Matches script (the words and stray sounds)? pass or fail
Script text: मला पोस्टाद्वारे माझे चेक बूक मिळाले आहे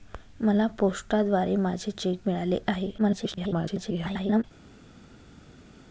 fail